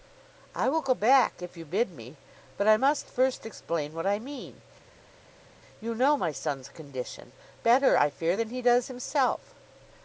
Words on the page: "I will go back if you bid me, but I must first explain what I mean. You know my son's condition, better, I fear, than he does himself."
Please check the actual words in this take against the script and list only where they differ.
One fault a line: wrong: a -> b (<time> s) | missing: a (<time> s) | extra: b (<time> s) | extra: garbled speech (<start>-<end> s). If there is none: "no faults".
no faults